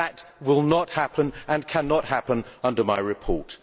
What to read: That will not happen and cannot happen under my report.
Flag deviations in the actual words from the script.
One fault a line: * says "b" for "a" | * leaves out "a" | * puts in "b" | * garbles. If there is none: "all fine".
all fine